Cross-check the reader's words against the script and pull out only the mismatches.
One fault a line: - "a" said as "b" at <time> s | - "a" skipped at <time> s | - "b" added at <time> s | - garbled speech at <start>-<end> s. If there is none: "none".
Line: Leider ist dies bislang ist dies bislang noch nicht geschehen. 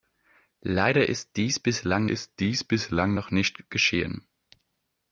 none